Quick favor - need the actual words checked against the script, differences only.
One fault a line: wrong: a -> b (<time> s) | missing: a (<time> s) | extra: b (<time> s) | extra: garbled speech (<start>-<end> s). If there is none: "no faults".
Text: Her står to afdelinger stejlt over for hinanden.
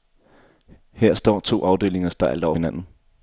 missing: for (2.5 s)